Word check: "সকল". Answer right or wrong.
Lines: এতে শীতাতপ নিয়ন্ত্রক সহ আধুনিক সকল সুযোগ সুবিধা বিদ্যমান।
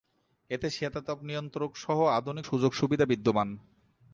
wrong